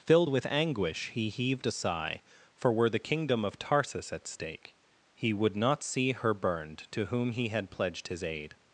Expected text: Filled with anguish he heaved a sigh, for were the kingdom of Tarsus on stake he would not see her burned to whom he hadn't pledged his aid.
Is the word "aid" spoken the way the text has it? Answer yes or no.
yes